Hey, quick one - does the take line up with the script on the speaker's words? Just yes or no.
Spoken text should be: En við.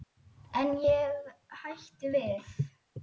no